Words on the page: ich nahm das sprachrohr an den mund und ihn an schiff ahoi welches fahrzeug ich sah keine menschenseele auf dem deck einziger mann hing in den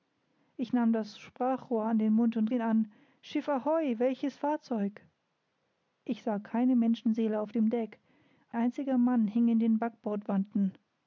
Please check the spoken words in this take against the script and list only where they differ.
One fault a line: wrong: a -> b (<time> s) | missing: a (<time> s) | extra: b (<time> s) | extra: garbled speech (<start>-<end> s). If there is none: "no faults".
no faults